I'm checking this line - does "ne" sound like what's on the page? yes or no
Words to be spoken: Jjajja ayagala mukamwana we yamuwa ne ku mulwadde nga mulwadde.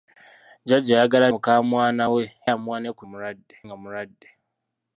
yes